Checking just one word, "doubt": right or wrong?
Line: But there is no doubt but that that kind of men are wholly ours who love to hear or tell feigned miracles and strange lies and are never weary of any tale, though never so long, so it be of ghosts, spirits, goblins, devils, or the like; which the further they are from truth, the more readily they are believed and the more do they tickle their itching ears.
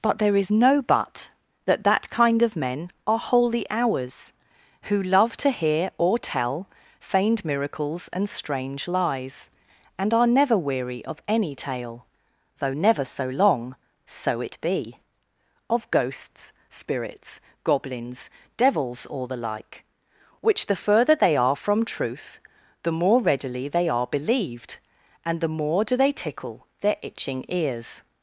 wrong